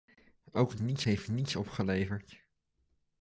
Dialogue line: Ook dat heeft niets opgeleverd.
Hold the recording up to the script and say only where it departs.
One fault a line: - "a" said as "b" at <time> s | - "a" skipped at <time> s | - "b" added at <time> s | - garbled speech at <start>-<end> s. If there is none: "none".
- "dat" said as "niets" at 0.8 s